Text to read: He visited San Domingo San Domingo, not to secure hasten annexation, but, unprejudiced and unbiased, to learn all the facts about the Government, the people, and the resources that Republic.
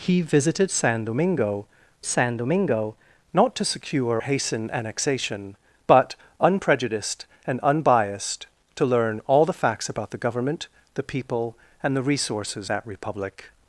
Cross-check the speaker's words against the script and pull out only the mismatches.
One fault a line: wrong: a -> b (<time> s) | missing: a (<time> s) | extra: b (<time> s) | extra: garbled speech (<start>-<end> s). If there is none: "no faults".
no faults